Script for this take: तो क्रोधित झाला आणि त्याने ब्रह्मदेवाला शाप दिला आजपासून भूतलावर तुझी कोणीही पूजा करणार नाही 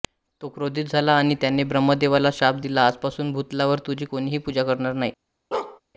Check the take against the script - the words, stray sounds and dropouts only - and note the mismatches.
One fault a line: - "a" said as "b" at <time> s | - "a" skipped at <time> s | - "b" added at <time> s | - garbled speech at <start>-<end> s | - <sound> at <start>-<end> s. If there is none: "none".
- bark at 5.5-5.8 s